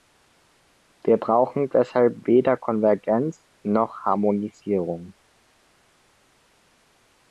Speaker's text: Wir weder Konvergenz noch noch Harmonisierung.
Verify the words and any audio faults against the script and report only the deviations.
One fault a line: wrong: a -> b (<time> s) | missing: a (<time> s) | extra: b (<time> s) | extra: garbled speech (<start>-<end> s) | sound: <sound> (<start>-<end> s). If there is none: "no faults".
extra: brauchen deshalb (1.2 s)
missing: noch (4.0 s)